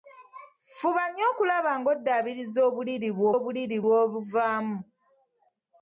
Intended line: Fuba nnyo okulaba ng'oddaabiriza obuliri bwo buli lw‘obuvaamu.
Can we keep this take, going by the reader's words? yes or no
no